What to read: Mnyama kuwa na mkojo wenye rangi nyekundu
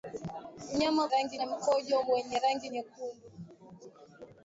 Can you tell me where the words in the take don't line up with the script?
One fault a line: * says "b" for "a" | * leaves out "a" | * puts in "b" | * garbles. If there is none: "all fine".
* says "rangi" for "kuwa"